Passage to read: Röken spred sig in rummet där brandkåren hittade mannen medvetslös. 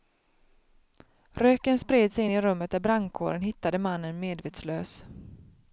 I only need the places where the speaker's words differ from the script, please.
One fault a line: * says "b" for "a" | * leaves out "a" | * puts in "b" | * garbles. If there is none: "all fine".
* puts in "i"